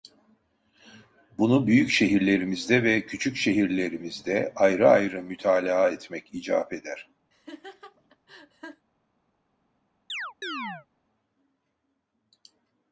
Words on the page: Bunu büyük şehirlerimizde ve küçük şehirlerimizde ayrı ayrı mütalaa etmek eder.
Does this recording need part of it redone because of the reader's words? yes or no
yes